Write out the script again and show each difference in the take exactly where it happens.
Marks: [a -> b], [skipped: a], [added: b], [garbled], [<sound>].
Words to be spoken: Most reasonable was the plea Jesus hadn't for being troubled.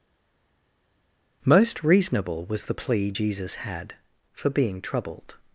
Most reasonable was the plea Jesus [hadn't -> had] for being troubled.